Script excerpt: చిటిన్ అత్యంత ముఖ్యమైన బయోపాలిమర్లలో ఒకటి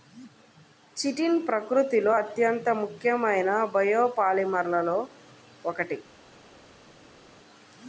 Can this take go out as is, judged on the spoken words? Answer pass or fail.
fail